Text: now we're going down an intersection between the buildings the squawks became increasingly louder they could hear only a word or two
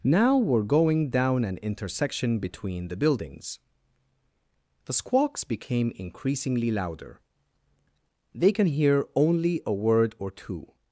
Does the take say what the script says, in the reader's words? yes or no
no